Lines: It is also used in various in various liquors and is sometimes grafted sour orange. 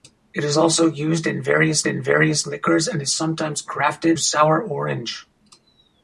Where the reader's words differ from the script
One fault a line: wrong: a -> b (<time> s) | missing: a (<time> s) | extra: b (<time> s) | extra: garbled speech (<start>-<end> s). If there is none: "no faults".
no faults